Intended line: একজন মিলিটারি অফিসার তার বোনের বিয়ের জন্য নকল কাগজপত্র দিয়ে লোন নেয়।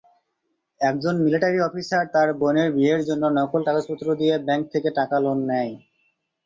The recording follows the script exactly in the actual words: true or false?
false